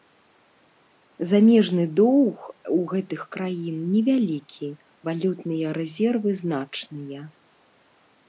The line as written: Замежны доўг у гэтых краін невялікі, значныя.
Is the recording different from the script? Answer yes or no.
yes